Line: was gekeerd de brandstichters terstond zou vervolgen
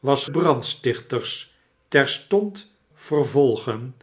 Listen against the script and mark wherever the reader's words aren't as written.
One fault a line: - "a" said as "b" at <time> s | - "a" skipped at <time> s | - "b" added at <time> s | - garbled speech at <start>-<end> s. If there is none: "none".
- "gekeerd de" skipped at 0.2 s
- "zou" skipped at 2.8 s